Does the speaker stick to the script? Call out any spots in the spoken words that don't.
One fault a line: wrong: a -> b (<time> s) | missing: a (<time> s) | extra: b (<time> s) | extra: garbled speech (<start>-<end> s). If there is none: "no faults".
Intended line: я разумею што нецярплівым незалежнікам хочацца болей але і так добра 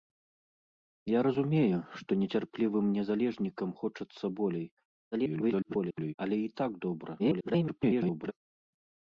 extra: garbled speech (5.1-6.1 s)
extra: garbled speech (7.2-8.3 s)